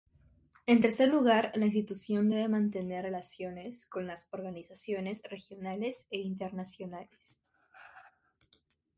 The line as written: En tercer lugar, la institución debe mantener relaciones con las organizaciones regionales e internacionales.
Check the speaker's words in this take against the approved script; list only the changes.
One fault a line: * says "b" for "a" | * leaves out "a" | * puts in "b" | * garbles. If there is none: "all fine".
all fine